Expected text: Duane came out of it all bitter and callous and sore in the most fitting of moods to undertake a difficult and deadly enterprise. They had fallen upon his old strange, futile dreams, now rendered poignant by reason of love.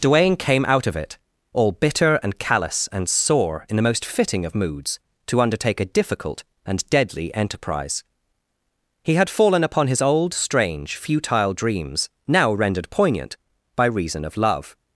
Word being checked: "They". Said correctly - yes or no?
no